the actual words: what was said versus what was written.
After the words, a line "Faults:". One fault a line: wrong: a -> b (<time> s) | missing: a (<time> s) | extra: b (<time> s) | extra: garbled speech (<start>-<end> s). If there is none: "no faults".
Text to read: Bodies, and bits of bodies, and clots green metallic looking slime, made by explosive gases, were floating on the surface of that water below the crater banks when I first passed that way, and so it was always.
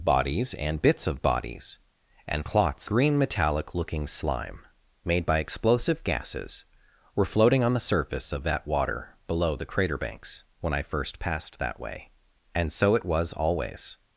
Bodies, and bits of bodies, and clots green metallic looking slime, made by explosive gases, were floating on the surface of that water below the crater banks when I first passed that way, and so it was always.
Faults:
no faults